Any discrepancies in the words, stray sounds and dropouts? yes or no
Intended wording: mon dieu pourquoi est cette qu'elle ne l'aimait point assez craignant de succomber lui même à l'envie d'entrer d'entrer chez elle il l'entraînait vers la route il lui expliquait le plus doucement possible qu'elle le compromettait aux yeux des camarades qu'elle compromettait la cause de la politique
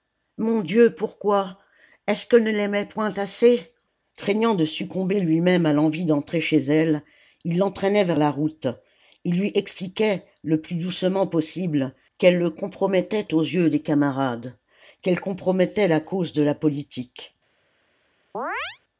yes